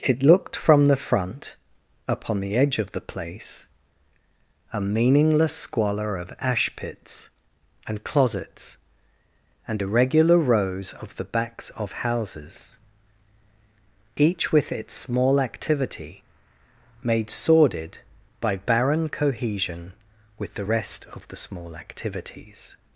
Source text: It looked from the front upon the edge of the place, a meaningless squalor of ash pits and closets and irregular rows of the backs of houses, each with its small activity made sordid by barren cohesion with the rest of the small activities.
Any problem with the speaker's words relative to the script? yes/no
no